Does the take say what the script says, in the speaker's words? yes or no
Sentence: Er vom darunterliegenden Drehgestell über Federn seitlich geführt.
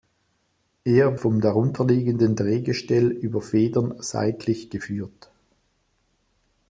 yes